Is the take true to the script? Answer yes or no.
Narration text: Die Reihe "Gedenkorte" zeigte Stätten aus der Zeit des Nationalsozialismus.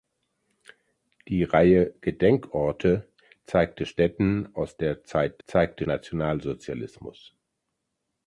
no